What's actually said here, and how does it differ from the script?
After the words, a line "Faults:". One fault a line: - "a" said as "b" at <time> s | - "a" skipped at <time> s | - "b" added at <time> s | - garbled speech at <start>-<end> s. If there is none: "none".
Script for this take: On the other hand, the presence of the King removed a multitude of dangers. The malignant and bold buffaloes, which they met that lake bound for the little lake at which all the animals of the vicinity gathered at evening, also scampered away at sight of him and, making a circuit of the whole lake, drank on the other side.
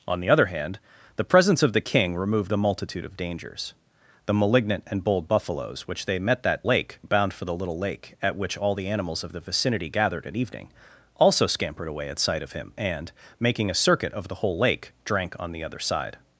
On the other hand, the presence of the King removed a multitude of dangers. The malignant and bold buffaloes, which they met that lake bound for the little lake at which all the animals of the vicinity gathered at evening, also scampered away at sight of him and, making a circuit of the whole lake, drank on the other side.
Faults:
none